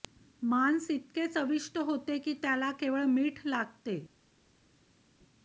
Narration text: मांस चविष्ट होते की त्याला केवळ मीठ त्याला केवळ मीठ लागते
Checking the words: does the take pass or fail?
fail